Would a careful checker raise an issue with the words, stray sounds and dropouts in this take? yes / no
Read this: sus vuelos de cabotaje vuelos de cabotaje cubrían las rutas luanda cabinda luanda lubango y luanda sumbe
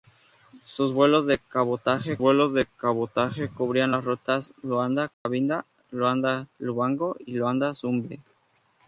yes